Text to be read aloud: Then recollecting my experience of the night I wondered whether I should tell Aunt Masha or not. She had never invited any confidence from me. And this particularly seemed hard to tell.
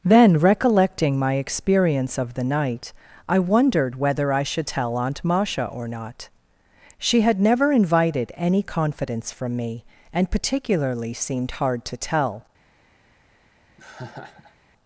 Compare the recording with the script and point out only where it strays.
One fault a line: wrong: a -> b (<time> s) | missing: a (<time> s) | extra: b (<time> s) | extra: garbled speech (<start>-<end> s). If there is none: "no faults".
missing: this (10.3 s)